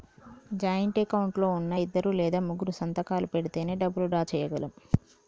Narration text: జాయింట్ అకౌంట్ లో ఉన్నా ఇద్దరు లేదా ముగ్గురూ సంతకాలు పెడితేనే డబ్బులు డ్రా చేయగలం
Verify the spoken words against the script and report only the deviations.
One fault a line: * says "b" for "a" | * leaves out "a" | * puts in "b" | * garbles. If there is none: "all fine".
all fine